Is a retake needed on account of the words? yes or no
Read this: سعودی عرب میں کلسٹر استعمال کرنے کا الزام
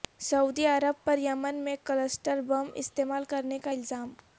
yes